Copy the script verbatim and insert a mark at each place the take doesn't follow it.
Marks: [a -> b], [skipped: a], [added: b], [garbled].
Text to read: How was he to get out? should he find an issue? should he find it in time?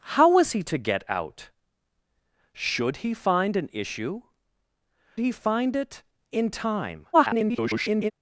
How was he to get out? should he find an issue? [skipped: should] he find it in time? [garbled]